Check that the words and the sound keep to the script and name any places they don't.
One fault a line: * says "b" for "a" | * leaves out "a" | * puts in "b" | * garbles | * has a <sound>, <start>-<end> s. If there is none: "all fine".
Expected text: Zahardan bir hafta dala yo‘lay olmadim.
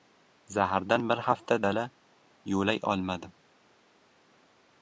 all fine